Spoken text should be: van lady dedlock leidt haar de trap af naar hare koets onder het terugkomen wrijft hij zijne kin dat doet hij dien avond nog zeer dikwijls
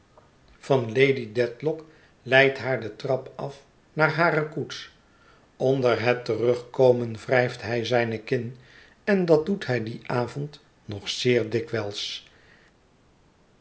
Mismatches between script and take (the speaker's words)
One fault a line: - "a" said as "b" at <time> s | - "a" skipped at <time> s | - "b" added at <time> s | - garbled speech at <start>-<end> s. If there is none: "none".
- "en" added at 9.0 s